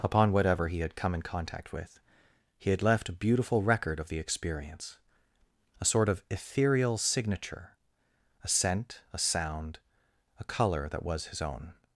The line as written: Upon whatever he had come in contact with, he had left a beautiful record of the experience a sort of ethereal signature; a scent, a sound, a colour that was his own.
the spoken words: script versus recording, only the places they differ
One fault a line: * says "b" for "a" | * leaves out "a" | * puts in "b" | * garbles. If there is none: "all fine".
all fine